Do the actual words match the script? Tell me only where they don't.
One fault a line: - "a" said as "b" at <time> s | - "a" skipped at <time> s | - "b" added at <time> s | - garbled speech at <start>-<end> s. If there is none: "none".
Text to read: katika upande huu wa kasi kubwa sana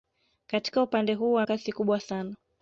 none